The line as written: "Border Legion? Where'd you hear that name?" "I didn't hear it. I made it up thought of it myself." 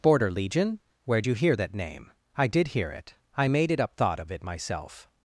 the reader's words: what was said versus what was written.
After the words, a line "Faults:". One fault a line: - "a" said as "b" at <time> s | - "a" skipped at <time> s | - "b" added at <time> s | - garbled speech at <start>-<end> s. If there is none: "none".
"Border Legion? Where'd you hear that name?" "I did hear it. I made it up thought of it myself."
Faults:
- "didn't" said as "did" at 2.5 s